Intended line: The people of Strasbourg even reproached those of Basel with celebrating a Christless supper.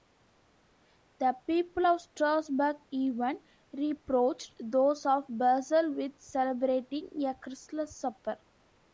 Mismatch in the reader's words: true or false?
false